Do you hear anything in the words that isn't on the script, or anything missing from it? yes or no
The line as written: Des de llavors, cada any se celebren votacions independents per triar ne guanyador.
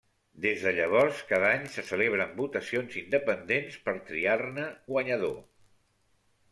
no